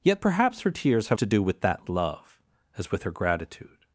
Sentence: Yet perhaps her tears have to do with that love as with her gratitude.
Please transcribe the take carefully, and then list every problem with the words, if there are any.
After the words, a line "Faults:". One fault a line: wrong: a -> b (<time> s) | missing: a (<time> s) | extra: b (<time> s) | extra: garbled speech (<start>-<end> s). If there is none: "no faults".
Yet perhaps her tears have to do with that love as with her gratitude.
Faults:
no faults